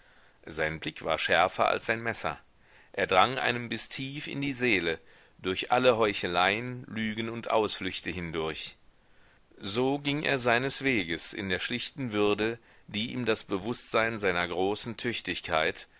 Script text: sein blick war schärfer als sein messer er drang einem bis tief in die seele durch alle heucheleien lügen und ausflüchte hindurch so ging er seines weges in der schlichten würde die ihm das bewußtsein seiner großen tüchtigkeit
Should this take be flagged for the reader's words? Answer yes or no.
no